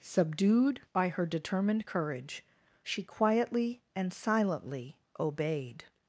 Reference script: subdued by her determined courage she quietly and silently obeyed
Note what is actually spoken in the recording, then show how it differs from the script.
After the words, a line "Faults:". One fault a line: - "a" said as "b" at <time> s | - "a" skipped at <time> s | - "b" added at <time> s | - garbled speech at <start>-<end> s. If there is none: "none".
subdued by her determined courage she quietly and silently obeyed
Faults:
none